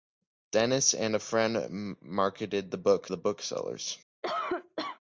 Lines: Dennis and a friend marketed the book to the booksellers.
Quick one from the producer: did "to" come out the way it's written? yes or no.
no